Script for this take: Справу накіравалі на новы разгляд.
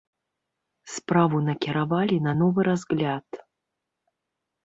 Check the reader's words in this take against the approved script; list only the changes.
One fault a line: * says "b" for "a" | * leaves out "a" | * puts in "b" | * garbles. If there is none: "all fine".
all fine